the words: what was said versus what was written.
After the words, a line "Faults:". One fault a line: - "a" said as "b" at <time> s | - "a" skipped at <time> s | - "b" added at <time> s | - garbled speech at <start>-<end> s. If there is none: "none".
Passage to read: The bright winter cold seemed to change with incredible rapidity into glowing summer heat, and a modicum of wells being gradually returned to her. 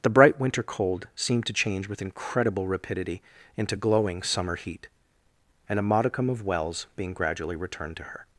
The bright winter cold seemed to change with incredible rapidity into glowing summer heat, and a modicum of wells being gradually returned to her.
Faults:
none